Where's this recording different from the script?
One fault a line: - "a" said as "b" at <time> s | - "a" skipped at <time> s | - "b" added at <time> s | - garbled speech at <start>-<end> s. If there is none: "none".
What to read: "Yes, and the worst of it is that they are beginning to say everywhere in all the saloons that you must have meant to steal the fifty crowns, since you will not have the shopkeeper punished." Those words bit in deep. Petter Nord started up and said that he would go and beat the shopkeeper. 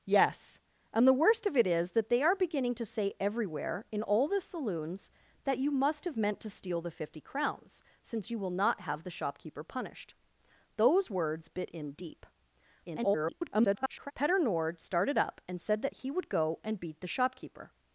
- garbled speech at 12.8-14.1 s